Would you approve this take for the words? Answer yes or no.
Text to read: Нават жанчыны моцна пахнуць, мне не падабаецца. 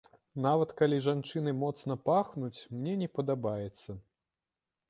no